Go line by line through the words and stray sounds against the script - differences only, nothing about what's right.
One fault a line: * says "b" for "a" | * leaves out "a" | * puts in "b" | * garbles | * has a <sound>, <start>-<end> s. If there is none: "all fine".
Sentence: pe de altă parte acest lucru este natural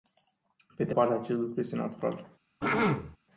* leaves out "altă"
* has a throat clearing, 2.6-3.2 s